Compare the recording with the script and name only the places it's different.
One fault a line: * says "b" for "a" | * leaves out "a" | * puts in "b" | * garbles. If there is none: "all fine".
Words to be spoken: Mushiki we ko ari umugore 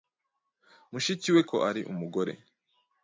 all fine